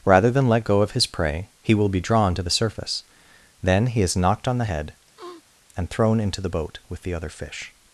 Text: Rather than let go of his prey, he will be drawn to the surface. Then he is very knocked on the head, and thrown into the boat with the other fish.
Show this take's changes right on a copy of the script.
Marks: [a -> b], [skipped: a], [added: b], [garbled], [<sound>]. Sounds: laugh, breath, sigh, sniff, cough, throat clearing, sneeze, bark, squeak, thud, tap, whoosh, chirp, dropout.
Rather than let go of his prey, he will be drawn to the surface. Then he is [skipped: very] knocked on the head, [sniff] and thrown into the boat with the other fish.